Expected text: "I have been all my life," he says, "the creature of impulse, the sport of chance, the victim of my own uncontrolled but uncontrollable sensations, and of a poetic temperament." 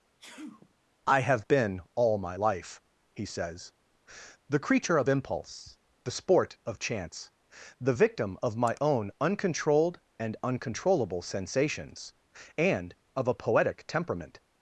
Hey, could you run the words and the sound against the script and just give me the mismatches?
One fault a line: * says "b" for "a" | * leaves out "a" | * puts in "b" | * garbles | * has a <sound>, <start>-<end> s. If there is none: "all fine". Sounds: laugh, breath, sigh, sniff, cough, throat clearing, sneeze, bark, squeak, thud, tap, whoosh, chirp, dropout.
* has a sneeze, 0.2-0.7 s
* says "and" for "but"